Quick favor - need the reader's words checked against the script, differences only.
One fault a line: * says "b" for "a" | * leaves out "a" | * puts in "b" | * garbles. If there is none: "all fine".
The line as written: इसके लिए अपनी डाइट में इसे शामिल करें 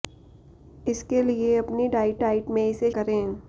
* puts in "डाइट"
* leaves out "शामिल"